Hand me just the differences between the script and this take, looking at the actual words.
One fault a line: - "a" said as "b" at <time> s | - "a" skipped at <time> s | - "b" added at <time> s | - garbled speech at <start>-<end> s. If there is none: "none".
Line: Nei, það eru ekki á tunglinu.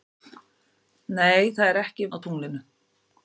none